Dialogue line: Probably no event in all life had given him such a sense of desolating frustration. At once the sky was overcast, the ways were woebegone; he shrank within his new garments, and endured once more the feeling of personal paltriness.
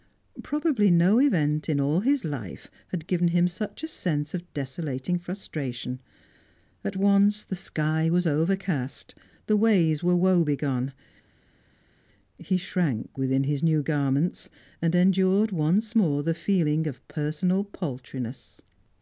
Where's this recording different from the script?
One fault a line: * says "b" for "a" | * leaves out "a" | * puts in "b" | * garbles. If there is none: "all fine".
* puts in "his"